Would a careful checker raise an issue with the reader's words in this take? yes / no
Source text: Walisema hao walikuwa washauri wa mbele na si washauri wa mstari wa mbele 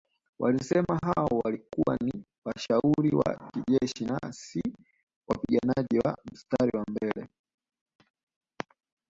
yes